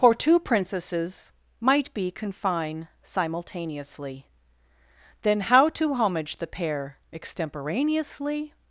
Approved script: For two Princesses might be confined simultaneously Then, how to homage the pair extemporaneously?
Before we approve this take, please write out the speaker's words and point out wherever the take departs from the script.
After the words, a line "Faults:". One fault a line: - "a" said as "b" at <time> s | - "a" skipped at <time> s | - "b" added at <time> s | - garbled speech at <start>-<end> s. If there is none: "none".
For two Princesses might be confine simultaneously Then, how to homage the pair extemporaneously?
Faults:
- "confined" said as "confine" at 2.1 s